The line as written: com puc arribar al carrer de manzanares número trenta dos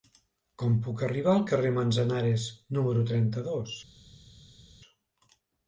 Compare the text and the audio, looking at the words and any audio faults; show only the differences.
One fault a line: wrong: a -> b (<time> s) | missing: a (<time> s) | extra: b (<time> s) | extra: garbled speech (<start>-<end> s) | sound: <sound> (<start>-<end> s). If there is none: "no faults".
no faults